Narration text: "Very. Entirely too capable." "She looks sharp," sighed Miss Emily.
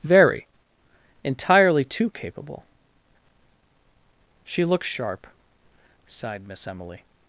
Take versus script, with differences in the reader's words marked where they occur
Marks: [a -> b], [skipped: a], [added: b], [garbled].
"Very. Entirely too capable." "She looks sharp," sighed Miss Emily.